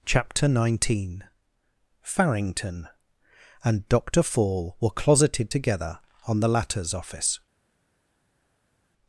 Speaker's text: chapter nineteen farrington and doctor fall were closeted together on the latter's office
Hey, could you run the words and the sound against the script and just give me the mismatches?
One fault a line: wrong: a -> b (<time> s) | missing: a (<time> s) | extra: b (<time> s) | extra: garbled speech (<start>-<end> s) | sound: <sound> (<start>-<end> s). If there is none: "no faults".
no faults